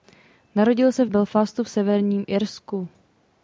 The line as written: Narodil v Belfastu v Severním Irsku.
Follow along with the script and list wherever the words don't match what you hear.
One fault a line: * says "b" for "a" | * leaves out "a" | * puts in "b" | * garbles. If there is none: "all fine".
* puts in "se"